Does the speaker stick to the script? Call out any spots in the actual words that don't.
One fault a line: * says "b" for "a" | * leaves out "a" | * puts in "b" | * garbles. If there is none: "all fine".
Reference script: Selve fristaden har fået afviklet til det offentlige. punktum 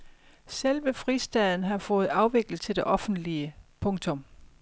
all fine